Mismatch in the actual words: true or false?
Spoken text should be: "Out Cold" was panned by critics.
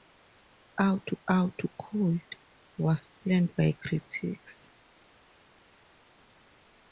true